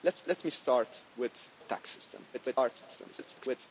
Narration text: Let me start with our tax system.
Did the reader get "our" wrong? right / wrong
wrong